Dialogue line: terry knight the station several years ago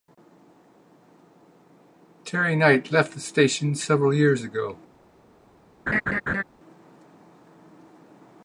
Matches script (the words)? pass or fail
fail